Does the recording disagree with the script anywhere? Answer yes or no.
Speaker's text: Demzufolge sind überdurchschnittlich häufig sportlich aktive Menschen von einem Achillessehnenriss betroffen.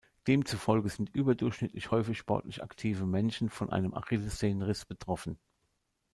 no